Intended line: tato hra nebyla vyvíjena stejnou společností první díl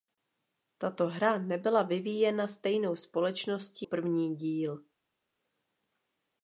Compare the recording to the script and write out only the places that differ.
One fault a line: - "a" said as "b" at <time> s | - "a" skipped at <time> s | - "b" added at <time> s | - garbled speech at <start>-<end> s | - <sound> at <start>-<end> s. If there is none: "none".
none